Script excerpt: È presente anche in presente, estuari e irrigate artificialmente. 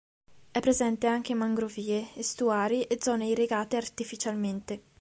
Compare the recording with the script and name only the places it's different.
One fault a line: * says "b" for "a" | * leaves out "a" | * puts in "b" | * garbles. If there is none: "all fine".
* says "mangrovie" for "presente"
* puts in "zone"